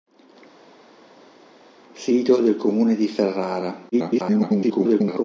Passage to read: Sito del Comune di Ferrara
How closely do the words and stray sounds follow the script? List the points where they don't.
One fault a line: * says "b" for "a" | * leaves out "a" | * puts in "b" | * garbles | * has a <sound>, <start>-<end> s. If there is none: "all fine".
* garbles